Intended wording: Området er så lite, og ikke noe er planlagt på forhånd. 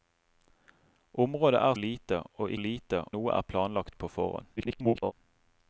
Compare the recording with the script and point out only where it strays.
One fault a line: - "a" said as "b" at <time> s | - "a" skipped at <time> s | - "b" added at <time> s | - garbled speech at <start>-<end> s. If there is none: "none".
- "så" skipped at 1.7 s
- "ikke" said as "lite" at 2.6 s
- garbled speech at 4.6-5.1 s